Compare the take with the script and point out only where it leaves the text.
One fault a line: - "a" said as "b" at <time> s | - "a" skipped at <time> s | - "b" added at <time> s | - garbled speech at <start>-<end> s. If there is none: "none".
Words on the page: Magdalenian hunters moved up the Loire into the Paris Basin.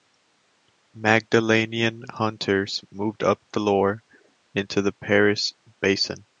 none